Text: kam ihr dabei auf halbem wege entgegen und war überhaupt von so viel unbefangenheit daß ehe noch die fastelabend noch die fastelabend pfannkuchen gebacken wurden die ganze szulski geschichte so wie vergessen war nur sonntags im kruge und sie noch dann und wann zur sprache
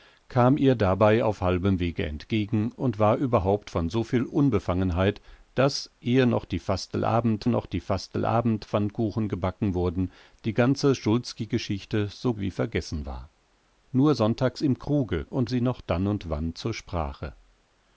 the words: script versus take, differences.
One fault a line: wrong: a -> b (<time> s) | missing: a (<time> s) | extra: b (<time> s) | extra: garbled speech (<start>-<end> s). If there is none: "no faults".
no faults